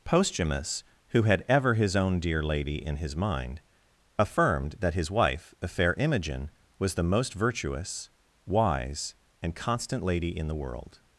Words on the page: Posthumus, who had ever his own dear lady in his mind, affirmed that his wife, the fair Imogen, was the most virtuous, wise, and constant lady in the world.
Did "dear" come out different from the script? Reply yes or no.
no